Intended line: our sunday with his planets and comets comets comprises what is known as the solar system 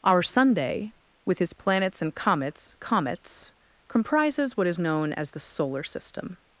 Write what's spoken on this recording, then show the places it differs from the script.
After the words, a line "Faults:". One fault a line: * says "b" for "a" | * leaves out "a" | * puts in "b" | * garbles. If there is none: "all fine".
our sunday with his planets and comets comets comprises what is known as the solar system
Faults:
all fine